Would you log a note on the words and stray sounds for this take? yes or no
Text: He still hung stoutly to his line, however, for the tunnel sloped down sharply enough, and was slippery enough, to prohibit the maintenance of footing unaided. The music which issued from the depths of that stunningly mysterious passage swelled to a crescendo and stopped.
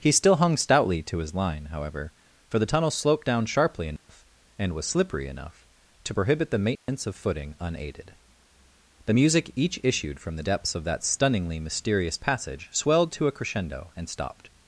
yes